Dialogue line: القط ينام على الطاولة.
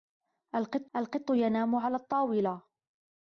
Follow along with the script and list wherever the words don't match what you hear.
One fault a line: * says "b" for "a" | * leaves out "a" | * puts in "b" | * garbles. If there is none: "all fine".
* puts in "القط"